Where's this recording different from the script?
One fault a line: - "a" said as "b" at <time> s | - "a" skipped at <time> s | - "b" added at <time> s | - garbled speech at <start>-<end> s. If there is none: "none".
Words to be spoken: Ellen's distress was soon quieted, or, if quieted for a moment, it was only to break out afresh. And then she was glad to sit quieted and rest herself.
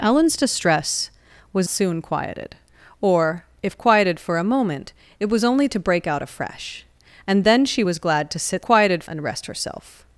none